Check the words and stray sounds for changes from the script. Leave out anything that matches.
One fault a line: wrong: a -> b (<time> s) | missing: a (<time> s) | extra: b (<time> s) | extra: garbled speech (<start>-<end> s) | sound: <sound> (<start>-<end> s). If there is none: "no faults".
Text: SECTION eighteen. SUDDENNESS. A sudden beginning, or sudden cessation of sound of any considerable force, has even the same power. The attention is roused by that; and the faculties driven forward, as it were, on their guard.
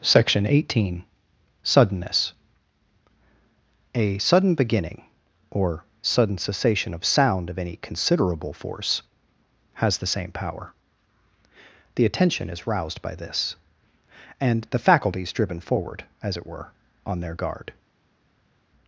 missing: even (10.0 s)
wrong: that -> this (13.2 s)